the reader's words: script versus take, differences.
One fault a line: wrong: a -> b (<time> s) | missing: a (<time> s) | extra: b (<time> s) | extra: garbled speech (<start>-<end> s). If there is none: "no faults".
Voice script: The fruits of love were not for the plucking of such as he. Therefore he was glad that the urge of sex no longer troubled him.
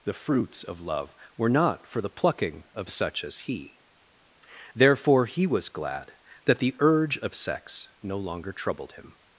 no faults